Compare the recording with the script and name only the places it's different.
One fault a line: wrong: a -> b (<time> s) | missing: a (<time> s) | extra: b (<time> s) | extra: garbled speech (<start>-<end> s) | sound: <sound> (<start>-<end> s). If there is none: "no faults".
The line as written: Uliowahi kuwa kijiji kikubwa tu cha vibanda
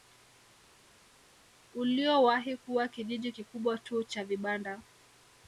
no faults